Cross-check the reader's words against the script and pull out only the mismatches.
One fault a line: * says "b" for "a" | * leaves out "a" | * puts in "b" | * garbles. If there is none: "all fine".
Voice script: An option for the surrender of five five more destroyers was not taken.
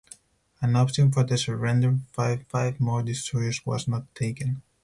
all fine